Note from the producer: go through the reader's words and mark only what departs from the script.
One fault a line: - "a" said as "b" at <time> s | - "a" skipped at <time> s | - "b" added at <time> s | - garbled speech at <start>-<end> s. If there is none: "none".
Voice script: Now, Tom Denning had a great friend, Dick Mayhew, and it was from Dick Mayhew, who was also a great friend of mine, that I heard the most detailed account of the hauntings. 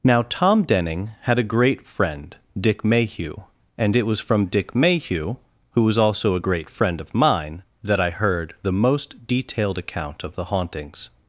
none